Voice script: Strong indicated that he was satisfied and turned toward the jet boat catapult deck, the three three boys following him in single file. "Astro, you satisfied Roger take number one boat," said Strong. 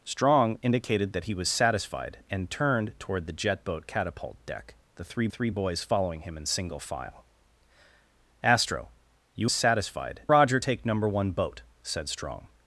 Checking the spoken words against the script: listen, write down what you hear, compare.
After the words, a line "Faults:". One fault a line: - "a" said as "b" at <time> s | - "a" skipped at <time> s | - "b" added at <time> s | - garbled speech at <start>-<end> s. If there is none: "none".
Strong indicated that he was satisfied and turned toward the jet boat catapult deck, the three three boys following him in single file. "Astro, you satisfied Roger take number one boat," said Strong.
Faults:
none